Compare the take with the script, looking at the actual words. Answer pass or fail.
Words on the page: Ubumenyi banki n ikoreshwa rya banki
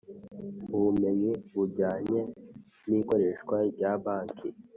fail